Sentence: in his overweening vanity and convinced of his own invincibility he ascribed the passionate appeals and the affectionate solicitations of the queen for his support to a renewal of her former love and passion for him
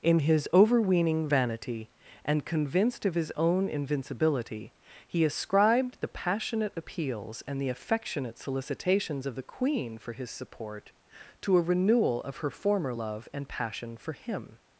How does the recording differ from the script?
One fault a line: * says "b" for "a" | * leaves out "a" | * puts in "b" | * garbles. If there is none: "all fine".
all fine